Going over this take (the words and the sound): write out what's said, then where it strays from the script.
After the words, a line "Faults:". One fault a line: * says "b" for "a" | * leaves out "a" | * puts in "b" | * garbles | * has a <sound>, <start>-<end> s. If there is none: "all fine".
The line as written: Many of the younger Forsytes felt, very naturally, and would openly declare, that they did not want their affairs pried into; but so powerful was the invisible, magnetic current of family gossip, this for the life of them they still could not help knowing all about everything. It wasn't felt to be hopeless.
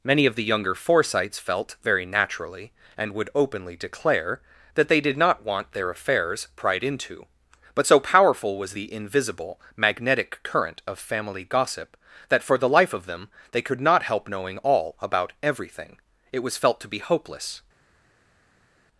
Many of the younger Forsytes felt, very naturally, and would openly declare, that they did not want their affairs pried into; but so powerful was the invisible, magnetic current of family gossip, that for the life of them they could not help knowing all about everything. It was felt to be hopeless.
Faults:
* says "that" for "this"
* leaves out "still"
* says "was" for "wasn't"